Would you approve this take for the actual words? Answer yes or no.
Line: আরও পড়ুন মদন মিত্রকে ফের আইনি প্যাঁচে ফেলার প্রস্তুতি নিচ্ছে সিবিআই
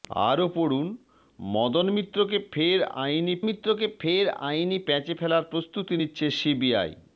no